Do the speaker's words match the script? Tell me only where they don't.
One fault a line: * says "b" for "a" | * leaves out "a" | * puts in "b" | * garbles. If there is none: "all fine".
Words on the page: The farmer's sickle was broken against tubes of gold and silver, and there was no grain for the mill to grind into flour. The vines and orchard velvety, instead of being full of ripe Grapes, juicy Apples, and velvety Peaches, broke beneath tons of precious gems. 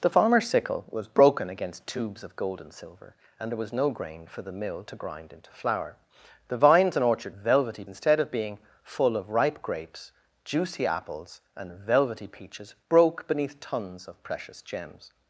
all fine